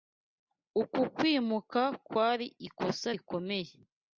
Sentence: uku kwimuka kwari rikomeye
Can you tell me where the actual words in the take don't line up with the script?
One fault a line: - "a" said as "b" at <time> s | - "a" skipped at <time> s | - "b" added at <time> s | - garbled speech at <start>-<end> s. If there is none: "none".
- "ikosa" added at 2.7 s